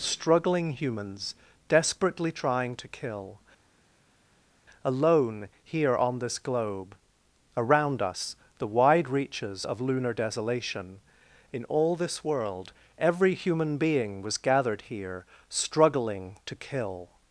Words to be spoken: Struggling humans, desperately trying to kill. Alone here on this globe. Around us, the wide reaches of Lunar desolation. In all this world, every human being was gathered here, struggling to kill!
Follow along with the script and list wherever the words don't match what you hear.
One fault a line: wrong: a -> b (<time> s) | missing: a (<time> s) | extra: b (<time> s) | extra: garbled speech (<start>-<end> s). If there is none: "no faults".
no faults